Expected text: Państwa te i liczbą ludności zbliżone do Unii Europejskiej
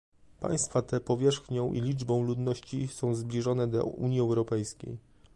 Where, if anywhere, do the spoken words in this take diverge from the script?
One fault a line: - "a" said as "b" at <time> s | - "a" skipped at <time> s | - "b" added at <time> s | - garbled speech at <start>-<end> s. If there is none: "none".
- "powierzchnią" added at 1.0 s
- "są" added at 2.9 s